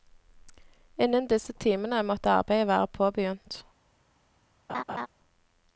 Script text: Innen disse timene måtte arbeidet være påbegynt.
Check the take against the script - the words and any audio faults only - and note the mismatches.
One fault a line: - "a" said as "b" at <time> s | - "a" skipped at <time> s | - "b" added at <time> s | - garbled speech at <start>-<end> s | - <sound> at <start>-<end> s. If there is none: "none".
- laugh at 4.7-5.1 s